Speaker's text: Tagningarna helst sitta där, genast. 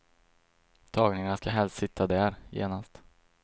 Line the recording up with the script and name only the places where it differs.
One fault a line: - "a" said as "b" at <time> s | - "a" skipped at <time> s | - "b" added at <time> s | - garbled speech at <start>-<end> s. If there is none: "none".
- "ska" added at 1.3 s